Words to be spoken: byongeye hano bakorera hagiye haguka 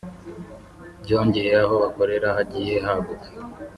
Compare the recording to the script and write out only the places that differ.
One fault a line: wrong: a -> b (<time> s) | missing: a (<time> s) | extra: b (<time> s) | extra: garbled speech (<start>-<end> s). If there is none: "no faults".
wrong: hano -> aho (1.6 s)